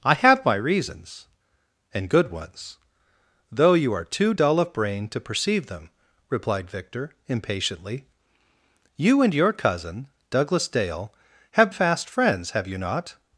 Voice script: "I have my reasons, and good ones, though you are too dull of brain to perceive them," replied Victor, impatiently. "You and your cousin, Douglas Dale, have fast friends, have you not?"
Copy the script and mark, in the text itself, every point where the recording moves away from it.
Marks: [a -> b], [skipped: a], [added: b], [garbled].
"I have my reasons, and good ones, though you are too dull of brain to perceive them," replied Victor, impatiently. "You and your cousin, Douglas Dale, have fast friends, have you not?"